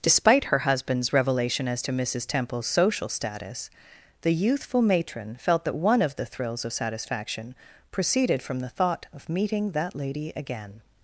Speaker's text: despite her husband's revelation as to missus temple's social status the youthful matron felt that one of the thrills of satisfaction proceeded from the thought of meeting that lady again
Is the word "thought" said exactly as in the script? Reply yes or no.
yes